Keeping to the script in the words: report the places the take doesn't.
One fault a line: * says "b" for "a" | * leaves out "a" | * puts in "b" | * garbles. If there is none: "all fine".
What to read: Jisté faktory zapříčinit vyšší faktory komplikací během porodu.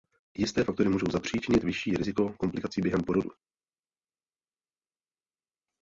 * puts in "můžou"
* says "riziko" for "faktory"